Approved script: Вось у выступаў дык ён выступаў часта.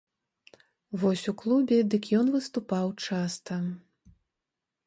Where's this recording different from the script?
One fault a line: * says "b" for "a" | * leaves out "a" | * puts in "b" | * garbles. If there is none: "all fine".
* says "клубе" for "выступаў"